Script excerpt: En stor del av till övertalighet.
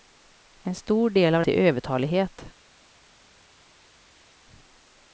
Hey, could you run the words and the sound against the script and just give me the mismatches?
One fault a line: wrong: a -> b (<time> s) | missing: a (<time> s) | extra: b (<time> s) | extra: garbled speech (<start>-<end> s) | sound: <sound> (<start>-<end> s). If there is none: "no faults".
no faults